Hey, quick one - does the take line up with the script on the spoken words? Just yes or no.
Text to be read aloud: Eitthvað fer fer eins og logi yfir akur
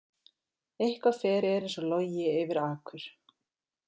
yes